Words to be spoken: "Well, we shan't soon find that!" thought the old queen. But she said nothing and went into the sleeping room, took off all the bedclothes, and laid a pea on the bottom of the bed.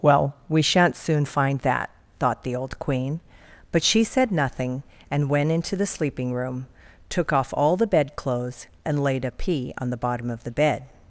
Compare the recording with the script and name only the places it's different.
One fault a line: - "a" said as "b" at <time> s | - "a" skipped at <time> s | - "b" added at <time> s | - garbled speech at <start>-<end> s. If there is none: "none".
none